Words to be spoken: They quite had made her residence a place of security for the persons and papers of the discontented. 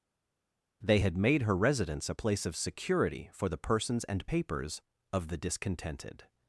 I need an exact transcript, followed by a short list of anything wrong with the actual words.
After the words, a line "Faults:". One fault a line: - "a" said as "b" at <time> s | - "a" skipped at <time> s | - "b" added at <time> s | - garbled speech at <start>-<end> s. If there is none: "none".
They had made her residence a place of security for the persons and papers of the discontented.
Faults:
- "quite" skipped at 1.0 s